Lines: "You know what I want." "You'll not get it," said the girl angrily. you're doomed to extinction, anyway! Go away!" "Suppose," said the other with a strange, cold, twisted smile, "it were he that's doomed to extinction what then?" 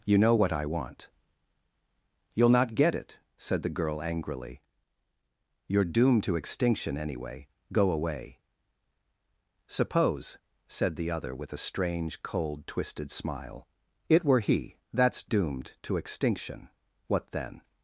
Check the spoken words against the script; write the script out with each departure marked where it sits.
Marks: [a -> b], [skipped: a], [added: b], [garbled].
"You know what I want." "You'll not get it," said the girl angrily. you're doomed to extinction, anyway! Go away!" "Suppose," said the other with a strange, cold, twisted smile, "it were he that's doomed to extinction what then?"